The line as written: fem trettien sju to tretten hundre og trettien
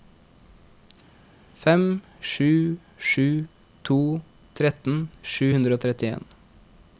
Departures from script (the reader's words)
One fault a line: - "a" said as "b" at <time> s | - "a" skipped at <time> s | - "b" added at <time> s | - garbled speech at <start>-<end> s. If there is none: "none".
- "trettien" said as "sju" at 2.3 s
- "sju" added at 5.4 s